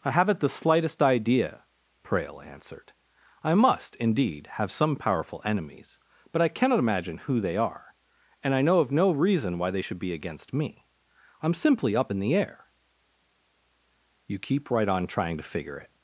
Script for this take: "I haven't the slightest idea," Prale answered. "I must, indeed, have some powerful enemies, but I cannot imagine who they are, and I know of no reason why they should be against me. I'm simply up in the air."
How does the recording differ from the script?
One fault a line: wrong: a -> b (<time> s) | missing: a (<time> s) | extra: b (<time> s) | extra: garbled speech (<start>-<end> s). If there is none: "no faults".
extra: You keep right on trying to figure it (14.3 s)